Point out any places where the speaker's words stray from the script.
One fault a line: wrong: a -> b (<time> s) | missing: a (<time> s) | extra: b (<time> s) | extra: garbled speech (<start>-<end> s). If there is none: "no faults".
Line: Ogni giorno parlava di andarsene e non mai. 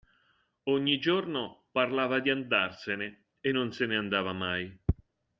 extra: se ne andava (3.7 s)